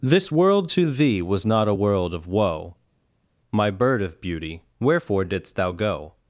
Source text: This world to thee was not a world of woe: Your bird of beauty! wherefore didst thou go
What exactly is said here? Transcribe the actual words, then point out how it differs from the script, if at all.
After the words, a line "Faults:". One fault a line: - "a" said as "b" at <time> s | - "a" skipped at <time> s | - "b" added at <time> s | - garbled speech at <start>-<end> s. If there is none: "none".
This world to thee was not a world of woe: My bird of beauty! wherefore didst thou go
Faults:
- "Your" said as "My" at 3.5 s